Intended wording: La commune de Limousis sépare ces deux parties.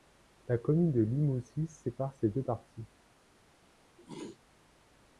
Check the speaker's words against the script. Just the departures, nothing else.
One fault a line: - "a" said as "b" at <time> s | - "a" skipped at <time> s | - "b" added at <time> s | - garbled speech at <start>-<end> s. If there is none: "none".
none